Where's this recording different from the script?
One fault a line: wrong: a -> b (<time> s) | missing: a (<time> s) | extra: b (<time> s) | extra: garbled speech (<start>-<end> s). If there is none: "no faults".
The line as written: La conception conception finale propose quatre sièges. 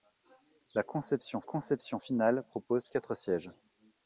no faults